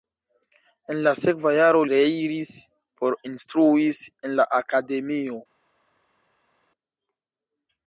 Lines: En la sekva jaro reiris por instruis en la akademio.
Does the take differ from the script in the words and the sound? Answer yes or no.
no